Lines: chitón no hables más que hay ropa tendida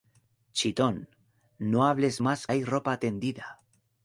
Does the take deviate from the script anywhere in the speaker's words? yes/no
yes